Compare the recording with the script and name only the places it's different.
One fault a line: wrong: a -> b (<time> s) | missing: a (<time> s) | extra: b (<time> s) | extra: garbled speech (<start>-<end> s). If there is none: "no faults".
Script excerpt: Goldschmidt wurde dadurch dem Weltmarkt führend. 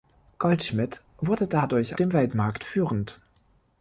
no faults